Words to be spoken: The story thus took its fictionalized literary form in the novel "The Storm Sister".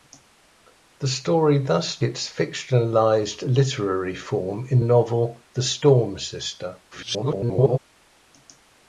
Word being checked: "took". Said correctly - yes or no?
no